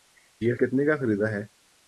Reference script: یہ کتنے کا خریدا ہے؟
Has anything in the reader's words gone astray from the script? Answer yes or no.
no